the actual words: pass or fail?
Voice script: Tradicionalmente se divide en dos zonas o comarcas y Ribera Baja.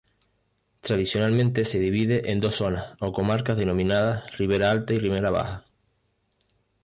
fail